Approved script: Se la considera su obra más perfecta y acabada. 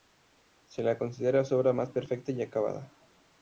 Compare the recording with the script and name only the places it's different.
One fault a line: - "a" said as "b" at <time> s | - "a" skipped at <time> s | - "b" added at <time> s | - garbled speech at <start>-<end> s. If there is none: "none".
none